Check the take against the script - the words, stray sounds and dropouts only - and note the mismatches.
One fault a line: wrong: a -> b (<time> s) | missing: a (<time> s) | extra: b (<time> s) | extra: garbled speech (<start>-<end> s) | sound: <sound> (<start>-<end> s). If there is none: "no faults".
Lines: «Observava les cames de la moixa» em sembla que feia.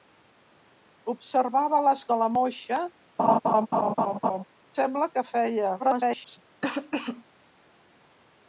missing: cames (2.0 s)
missing: em (2.8 s)
sound: laugh (3.2-4.4 s)
extra: garbled speech (5.8-6.4 s)
sound: cough (6.6-7.2 s)